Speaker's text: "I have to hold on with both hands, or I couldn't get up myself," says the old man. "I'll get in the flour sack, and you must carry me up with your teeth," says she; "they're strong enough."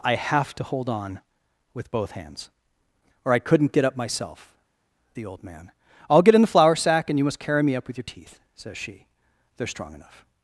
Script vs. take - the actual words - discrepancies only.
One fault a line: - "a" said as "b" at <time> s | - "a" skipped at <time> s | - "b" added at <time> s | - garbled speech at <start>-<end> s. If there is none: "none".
- "says" skipped at 4.5 s